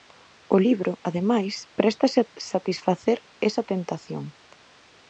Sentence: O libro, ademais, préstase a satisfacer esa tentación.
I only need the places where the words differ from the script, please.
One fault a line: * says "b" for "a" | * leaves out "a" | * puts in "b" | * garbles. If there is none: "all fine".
all fine